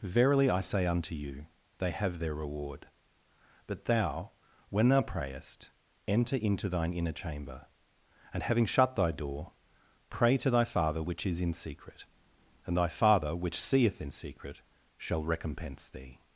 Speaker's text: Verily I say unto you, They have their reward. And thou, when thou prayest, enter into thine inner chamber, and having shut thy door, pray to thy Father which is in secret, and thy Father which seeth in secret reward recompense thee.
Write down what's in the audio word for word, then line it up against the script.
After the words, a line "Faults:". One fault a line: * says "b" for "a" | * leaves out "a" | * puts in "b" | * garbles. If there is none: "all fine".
Verily I say unto you, They have their reward. But thou, when thou prayest, enter into thine inner chamber, and having shut thy door, pray to thy Father which is in secret, and thy Father which seeth in secret shall recompense thee.
Faults:
* says "But" for "And"
* says "shall" for "reward"